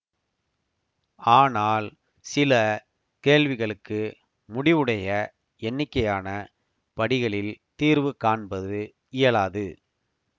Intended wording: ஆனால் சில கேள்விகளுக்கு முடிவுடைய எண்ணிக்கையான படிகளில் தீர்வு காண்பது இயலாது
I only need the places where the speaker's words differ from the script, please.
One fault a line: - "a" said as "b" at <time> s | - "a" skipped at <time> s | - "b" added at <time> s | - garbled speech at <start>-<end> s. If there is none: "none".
none